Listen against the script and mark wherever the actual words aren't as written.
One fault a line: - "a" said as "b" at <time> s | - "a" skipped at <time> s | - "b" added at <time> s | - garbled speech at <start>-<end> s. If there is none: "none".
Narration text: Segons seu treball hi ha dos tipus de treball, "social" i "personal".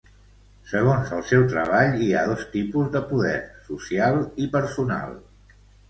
- "el" added at 1.1 s
- "treball" said as "poder" at 3.1 s